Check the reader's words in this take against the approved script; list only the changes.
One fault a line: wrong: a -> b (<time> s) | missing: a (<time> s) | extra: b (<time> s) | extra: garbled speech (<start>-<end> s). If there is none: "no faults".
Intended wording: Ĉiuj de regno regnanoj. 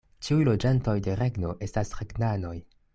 extra: loĝantoj (0.5 s)
extra: estas (1.7 s)